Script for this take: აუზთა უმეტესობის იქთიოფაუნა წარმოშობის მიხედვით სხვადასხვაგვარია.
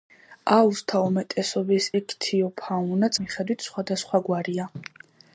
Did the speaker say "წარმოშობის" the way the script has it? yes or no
no